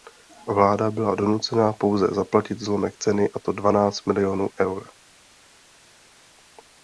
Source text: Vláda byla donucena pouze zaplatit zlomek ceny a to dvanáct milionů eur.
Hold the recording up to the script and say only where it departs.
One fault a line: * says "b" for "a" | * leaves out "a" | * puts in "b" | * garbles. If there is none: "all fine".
all fine